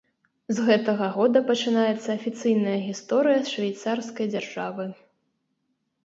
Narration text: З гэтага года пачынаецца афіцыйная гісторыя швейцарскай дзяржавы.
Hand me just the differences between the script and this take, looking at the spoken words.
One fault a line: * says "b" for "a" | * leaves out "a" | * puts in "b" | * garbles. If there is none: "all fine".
all fine